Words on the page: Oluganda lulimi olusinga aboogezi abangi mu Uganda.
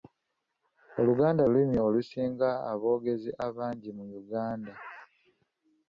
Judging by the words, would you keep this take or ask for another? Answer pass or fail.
pass